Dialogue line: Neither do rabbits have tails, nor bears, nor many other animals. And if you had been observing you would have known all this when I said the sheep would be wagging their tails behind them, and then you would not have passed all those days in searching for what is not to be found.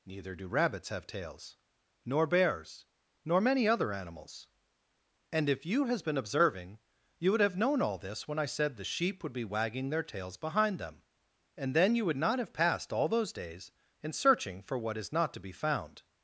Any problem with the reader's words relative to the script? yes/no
yes